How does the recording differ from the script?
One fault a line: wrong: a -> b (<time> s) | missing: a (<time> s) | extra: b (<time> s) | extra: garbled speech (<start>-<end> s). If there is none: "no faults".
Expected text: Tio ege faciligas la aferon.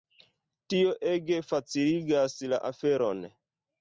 no faults